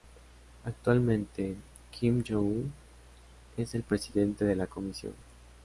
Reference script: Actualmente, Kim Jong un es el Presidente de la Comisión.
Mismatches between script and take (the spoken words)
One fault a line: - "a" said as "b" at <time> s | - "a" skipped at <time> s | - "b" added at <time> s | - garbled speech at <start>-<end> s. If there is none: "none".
none